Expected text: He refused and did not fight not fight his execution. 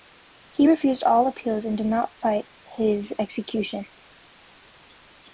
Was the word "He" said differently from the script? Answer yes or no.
no